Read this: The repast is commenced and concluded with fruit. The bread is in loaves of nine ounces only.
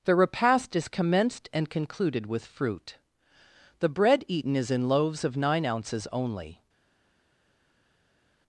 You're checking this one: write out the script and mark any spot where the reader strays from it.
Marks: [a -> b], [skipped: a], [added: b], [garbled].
The repast is commenced and concluded with fruit. The bread [added: eaten] is in loaves of nine ounces only.